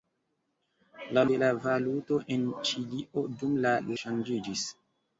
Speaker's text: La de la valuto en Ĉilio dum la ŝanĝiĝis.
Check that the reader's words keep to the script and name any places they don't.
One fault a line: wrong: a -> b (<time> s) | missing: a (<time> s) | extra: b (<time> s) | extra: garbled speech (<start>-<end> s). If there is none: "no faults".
no faults